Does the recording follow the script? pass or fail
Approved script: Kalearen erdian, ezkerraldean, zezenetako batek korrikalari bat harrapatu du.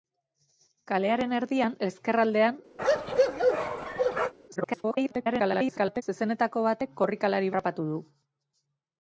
fail